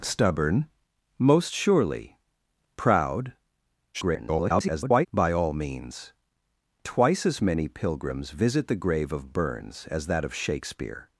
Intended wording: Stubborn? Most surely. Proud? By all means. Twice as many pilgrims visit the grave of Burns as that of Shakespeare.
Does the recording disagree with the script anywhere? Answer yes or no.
yes